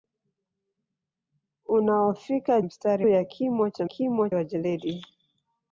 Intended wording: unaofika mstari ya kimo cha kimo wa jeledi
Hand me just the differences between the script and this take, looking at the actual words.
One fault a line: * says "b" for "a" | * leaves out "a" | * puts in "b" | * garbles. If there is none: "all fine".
all fine